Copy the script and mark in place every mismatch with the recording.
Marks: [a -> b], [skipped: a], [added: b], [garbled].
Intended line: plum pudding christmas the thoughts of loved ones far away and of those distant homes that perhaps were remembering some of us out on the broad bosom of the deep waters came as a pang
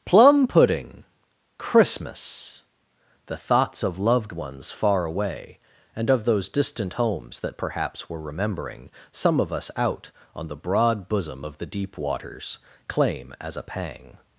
plum pudding christmas the thoughts of loved ones far away and of those distant homes that perhaps were remembering some of us out on the broad bosom of the deep waters [came -> claim] as a pang